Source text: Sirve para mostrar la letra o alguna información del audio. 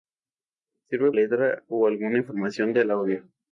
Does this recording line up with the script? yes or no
no